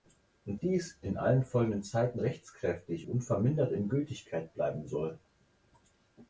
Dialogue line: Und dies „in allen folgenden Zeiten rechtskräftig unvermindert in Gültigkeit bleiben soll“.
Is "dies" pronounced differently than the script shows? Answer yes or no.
no